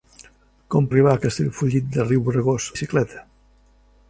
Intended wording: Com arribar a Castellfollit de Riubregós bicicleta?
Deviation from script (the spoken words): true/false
false